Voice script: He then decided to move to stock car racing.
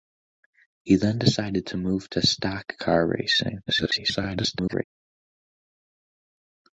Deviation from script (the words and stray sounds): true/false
true